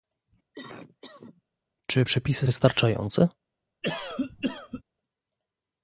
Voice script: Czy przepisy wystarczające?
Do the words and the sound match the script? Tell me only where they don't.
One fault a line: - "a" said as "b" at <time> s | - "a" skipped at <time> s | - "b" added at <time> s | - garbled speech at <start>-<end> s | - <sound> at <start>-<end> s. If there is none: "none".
- cough at 0.5-1.4 s
- cough at 3.8-4.8 s